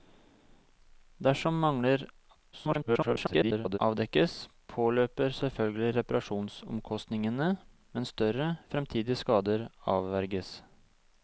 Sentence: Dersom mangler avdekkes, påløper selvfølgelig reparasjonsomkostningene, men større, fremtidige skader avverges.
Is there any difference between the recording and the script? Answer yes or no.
yes